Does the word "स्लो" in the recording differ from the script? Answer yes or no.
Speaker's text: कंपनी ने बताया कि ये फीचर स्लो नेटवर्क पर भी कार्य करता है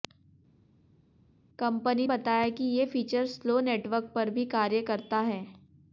no